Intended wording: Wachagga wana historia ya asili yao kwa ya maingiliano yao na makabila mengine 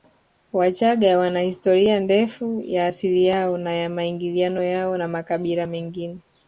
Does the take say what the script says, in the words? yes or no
no